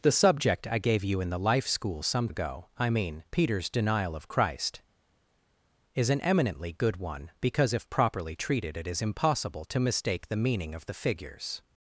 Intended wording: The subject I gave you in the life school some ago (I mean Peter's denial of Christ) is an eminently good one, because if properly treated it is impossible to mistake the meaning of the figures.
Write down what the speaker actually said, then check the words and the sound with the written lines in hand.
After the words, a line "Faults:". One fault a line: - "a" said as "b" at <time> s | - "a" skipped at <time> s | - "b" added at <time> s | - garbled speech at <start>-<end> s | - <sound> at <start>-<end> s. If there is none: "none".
The subject I gave you in the life school some ago (I mean Peter's denial of Christ) is an eminently good one, because if properly treated it is impossible to mistake the meaning of the figures.
Faults:
none